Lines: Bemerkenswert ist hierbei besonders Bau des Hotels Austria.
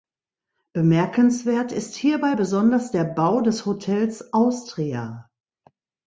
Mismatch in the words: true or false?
true